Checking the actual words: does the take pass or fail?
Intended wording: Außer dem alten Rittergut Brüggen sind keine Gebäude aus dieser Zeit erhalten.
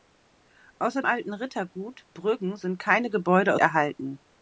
fail